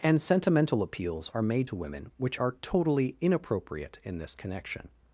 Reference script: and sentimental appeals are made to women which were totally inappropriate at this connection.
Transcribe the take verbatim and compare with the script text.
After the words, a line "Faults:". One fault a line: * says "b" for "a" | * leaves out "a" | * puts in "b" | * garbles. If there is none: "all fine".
and sentimental appeals are made to women which are totally inappropriate in this connection.
Faults:
* says "are" for "were"
* says "in" for "at"